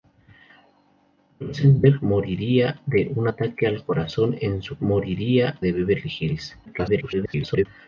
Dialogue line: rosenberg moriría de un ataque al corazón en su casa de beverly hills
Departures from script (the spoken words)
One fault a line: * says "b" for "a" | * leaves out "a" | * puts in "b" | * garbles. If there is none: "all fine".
* says "moriría" for "casa"
* garbles